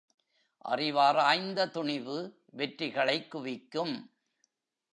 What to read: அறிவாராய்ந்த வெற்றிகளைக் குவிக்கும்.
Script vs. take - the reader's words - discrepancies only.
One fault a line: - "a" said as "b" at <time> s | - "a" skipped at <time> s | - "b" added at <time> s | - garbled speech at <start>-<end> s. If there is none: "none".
- "துணிவு" added at 1.7 s